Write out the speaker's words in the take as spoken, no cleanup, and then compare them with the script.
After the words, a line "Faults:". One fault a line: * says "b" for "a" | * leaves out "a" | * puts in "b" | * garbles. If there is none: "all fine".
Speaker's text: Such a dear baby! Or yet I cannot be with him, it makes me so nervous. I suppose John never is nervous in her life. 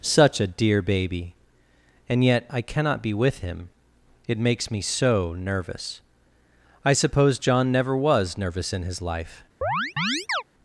Such a dear baby! And yet I cannot be with him, it makes me so nervous. I suppose John never was nervous in his life.
Faults:
* says "And" for "Or"
* says "was" for "is"
* says "his" for "her"